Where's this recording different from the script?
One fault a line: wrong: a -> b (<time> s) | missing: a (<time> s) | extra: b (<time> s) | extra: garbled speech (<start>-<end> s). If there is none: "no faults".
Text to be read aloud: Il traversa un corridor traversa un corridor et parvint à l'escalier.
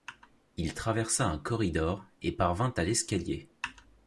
missing: traversa un corridor (2.0 s)